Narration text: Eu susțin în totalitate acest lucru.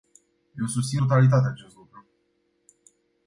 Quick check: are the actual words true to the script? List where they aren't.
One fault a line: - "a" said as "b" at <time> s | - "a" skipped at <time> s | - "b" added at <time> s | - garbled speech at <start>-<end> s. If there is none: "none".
- "în" skipped at 1.0 s